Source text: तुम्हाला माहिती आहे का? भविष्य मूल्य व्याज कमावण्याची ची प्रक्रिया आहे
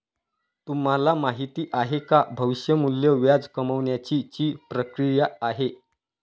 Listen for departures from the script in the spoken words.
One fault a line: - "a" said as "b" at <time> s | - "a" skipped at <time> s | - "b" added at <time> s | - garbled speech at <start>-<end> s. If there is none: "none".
none